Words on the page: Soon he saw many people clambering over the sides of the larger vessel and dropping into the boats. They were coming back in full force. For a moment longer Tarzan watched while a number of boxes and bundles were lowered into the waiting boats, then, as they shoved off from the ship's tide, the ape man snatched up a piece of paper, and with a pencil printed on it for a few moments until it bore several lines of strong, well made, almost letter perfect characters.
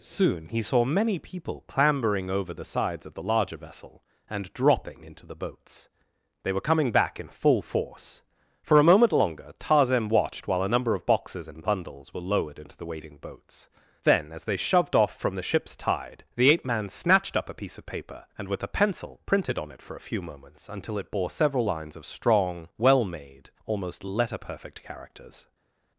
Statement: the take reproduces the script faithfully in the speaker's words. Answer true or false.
true